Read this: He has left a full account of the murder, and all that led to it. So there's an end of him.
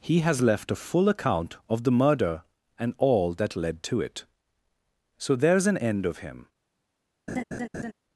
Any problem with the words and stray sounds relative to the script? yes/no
yes